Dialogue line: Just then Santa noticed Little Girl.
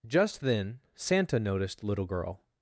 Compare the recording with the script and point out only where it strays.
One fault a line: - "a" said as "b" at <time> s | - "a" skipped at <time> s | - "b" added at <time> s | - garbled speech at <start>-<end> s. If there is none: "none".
none